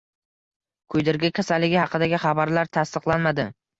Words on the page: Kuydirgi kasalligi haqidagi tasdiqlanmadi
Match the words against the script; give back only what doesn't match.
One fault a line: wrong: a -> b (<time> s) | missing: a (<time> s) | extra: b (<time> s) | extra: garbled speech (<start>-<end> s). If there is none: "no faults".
extra: xabarlar (2.3 s)